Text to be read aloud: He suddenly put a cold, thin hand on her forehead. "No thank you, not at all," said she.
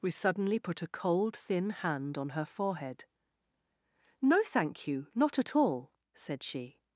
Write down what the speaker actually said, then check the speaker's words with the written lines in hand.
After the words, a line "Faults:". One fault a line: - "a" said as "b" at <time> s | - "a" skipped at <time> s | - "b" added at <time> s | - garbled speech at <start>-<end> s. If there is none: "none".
We suddenly put a cold, thin hand on her forehead. "No thank you, not at all," said she.
Faults:
- "He" said as "We" at 0.0 s